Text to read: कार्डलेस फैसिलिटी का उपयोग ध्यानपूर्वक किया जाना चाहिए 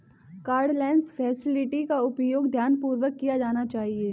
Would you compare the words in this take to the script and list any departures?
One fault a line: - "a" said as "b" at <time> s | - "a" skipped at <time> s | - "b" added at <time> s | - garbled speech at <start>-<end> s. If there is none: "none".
none